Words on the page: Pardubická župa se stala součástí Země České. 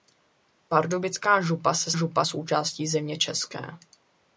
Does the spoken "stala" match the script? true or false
false